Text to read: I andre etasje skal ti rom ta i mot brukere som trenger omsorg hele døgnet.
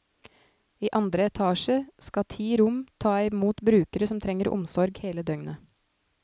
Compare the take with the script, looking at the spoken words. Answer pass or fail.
pass